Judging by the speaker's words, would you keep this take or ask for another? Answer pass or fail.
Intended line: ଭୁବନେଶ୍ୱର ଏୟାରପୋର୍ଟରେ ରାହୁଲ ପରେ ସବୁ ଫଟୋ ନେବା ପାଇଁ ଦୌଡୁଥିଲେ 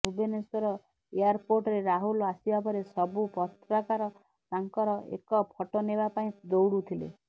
fail